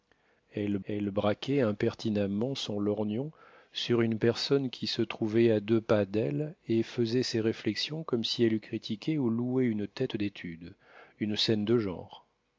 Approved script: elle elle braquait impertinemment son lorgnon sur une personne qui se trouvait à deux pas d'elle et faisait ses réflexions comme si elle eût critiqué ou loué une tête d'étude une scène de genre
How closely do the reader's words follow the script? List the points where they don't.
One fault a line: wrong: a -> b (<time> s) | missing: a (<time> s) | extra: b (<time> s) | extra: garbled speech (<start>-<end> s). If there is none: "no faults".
no faults